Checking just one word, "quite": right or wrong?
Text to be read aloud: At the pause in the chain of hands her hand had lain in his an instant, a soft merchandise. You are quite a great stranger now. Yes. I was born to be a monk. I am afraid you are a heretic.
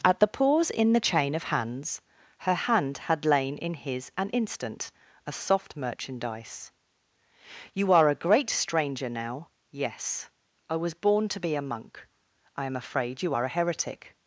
wrong